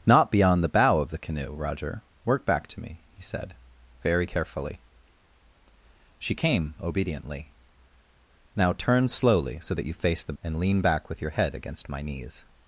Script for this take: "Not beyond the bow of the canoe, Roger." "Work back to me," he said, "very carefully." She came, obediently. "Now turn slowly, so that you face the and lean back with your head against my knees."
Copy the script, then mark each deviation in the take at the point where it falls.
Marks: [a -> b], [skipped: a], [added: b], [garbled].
"Not beyond the bow of the canoe, Roger." "Work back to me," he said, "very carefully." She came, obediently. "Now turn slowly, so that you face the and lean back with your head against my knees."